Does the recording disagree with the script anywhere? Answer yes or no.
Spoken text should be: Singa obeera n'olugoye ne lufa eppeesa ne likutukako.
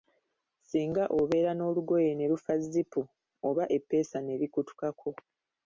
yes